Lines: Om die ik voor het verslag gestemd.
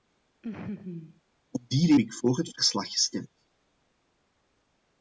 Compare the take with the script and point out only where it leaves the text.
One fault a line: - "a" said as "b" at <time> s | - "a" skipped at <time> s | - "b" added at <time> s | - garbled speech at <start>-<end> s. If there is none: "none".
none